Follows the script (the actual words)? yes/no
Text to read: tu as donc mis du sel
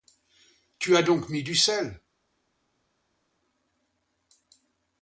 yes